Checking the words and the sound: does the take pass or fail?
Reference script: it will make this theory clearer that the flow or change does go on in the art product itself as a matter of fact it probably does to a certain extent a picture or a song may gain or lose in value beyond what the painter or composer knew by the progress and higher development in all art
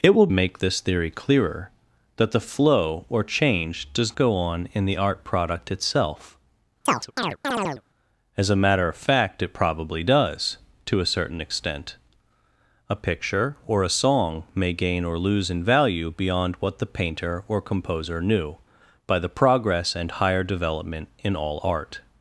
fail